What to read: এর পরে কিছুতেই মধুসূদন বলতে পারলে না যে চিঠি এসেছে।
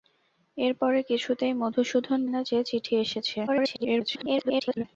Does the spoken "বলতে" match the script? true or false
false